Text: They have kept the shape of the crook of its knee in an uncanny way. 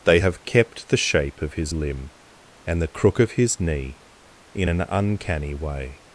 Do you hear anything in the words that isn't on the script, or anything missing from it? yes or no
yes